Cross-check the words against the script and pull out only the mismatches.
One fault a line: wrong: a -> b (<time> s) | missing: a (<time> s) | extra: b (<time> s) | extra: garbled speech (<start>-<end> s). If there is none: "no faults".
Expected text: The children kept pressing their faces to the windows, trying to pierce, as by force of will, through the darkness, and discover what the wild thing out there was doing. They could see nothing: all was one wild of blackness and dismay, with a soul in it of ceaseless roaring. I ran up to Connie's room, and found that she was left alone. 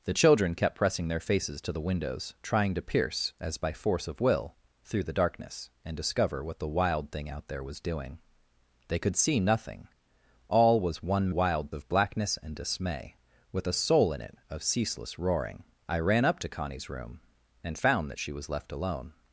no faults